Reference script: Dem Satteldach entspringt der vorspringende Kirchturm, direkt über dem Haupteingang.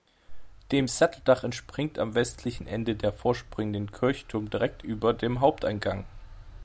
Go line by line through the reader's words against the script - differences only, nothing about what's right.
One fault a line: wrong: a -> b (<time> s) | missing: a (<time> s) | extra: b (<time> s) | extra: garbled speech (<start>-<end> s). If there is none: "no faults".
extra: am westlichen Ende (2.0 s)